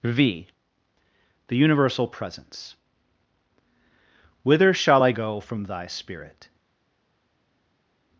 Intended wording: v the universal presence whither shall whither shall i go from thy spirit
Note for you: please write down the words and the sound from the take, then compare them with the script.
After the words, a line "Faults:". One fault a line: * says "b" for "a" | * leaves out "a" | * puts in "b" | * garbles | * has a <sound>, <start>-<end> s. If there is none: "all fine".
v the universal presence whither shall i go from thy spirit
Faults:
* leaves out "whither shall"